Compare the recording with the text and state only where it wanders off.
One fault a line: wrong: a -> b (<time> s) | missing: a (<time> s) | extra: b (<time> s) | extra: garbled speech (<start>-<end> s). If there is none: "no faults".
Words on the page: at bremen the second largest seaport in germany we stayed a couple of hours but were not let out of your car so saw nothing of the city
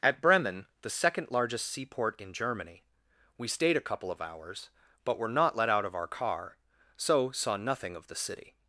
wrong: your -> our (5.9 s)